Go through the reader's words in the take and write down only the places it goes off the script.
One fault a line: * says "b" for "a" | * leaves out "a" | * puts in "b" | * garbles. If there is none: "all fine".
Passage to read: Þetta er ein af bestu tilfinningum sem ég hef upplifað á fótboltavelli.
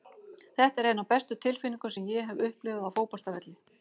all fine